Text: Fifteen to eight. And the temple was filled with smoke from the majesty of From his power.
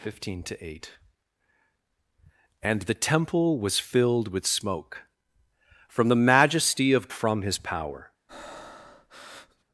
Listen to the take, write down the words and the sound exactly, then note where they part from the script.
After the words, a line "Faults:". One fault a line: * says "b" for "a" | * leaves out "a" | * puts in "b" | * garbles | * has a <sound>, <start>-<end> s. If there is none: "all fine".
Fifteen to eight. And the temple was filled with smoke from the majesty of From his power.
Faults:
* has a breath, 8.3-9.6 s